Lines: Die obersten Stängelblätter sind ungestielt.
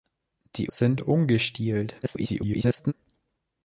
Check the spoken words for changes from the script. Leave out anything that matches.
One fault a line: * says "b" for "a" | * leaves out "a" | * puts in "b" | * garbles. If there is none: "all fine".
* leaves out "obersten Stängelblätter"
* garbles